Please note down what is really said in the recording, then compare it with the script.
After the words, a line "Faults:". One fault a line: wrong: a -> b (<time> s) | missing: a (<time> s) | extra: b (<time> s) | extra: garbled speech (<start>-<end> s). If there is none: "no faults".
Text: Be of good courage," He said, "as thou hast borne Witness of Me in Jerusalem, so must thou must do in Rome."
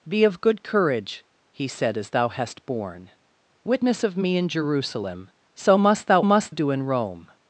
Be of good courage," He said, "as thou hast borne Witness of Me in Jerusalem, so must thou must do in Rome."
Faults:
no faults